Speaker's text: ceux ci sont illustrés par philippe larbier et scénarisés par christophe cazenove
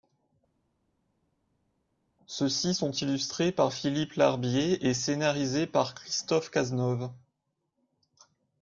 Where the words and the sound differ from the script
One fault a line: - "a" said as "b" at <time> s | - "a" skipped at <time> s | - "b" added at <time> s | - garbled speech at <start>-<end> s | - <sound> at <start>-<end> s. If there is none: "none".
none